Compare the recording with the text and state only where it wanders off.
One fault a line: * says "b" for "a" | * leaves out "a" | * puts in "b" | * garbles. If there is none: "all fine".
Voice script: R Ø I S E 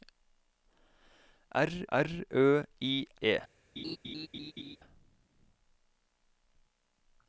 * puts in "r"
* leaves out "S"